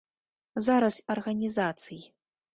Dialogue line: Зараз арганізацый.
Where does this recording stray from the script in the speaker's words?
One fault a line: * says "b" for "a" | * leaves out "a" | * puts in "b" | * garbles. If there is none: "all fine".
all fine